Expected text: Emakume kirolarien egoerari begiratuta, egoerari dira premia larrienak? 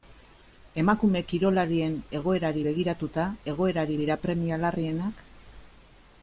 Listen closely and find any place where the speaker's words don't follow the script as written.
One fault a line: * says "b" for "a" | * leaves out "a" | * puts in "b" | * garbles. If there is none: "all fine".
all fine